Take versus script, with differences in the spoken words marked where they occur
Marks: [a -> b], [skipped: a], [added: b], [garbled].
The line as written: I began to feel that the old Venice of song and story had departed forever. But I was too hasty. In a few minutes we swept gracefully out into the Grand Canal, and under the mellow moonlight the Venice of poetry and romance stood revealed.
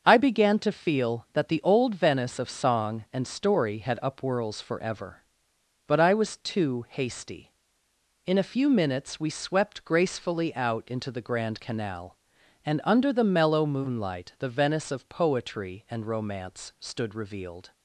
I began to feel that the old Venice of song and story had [departed -> upwhirls] forever. But I was too hasty. In a few minutes we swept gracefully out into the Grand Canal, and under the mellow moonlight the Venice of poetry and romance stood revealed.